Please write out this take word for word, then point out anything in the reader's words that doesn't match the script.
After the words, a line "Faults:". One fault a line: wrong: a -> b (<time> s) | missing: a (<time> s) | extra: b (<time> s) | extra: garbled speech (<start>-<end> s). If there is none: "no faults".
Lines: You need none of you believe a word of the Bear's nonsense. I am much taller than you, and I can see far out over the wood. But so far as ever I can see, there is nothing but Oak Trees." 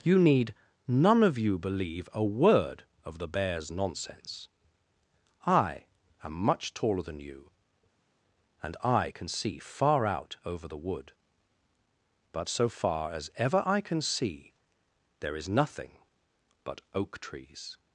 You need none of you believe a word of the Bear's nonsense. I am much taller than you, and I can see far out over the wood. But so far as ever I can see, there is nothing but Oak Trees."
Faults:
no faults